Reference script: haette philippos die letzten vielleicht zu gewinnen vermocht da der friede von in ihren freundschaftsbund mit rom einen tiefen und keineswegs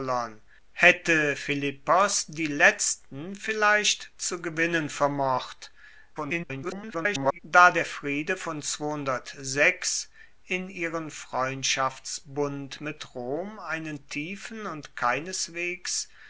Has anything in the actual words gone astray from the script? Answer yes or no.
yes